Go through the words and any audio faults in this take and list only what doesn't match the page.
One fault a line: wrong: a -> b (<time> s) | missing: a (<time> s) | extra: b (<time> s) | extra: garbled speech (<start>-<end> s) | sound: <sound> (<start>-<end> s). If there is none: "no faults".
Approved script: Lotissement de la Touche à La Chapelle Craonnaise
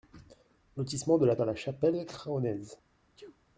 missing: Touche (1.4 s)
sound: sneeze (3.2-3.4 s)